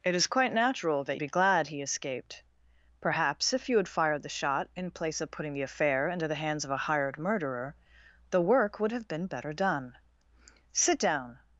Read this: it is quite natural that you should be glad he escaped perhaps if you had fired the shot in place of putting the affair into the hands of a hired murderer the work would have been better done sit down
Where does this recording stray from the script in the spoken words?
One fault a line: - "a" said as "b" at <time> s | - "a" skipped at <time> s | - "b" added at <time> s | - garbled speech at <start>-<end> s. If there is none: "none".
- "you should" skipped at 1.2 s